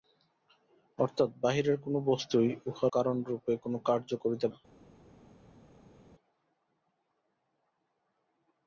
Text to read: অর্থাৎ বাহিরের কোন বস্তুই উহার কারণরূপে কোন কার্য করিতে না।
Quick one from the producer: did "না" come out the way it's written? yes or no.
yes